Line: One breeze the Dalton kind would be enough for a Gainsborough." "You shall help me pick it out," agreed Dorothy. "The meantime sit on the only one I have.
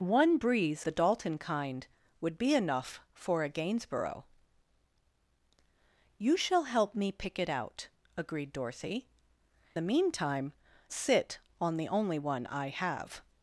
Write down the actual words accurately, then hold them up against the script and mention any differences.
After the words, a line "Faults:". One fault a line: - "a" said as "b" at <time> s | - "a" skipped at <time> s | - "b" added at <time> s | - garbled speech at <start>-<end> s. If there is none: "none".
One breeze the Dalton kind would be enough for a Gainsborough." "You shall help me pick it out," agreed Dorothy. "The meantime sit on the only one I have.
Faults:
none